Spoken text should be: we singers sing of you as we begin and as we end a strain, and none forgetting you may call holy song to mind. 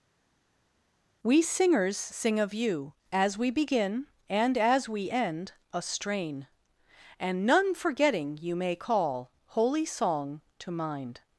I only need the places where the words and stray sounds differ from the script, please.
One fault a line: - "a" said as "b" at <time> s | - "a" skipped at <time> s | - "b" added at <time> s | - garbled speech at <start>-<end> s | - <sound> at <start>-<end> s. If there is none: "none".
none